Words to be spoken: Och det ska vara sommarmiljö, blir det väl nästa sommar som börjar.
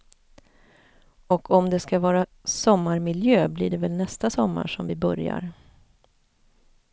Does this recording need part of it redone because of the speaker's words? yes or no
yes